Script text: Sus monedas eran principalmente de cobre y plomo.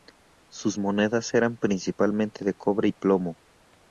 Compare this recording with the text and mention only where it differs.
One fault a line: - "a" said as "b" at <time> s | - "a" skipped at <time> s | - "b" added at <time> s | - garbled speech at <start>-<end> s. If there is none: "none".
none